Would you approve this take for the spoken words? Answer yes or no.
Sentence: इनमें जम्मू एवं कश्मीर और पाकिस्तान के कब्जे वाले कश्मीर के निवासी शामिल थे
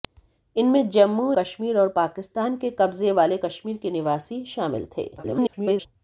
no